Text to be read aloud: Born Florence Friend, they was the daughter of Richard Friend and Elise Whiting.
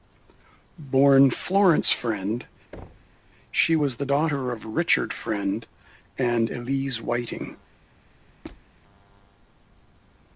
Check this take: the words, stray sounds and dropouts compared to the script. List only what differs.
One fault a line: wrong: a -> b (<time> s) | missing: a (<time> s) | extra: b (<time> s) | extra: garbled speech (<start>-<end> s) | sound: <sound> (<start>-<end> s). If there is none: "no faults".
sound: thud (2.7-3.2 s)
wrong: they -> she (3.5 s)
sound: squeak (8.4-8.7 s)